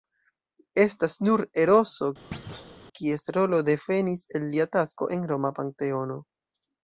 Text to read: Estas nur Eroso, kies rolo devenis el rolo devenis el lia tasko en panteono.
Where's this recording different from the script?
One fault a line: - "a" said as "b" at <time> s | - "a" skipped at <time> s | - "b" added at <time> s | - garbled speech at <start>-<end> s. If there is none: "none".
- "rolo devenis el" skipped at 4.5 s
- "roma" added at 5.3 s